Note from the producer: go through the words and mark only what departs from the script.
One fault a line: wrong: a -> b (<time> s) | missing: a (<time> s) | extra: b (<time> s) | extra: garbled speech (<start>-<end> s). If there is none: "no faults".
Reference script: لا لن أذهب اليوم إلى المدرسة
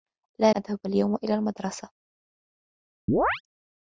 missing: لن (0.5 s)